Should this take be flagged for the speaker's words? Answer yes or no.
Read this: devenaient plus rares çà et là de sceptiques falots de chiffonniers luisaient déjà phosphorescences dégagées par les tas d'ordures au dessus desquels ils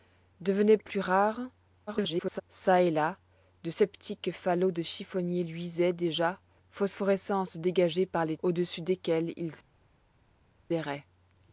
yes